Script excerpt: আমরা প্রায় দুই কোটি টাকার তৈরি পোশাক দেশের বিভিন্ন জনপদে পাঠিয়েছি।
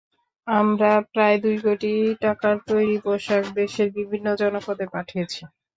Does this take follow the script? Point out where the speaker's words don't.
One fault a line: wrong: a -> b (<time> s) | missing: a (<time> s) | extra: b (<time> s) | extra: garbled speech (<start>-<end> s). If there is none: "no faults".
no faults